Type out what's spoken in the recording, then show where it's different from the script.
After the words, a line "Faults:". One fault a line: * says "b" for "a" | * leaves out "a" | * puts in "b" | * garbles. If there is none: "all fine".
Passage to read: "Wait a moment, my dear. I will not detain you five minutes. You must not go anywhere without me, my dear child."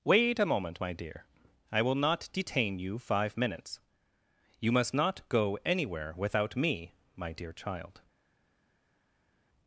"Wait a moment, my dear. I will not detain you five minutes. You must not go anywhere without me, my dear child."
Faults:
all fine